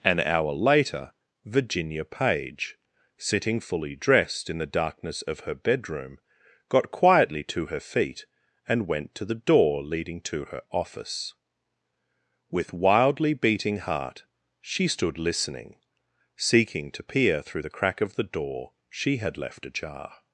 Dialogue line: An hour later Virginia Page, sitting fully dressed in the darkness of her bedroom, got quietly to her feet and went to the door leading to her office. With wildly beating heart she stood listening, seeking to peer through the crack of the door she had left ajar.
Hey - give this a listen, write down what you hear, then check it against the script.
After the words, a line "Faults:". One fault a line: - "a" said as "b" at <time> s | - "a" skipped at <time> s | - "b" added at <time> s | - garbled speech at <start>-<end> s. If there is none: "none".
An hour later Virginia Page, sitting fully dressed in the darkness of her bedroom, got quietly to her feet and went to the door leading to her office. With wildly beating heart she stood listening, seeking to peer through the crack of the door she had left ajar.
Faults:
none